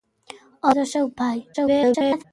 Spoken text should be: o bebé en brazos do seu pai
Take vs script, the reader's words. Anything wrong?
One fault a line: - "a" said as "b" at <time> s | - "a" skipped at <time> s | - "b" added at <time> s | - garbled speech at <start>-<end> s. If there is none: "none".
- "bebé en brazos" skipped at 0.8 s
- garbled speech at 1.5-2.2 s